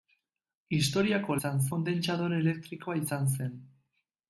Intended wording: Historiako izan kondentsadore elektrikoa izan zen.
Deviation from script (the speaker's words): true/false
false